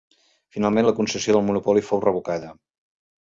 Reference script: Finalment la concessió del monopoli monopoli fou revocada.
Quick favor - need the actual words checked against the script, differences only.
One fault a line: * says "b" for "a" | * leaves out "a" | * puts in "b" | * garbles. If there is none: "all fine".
* leaves out "monopoli"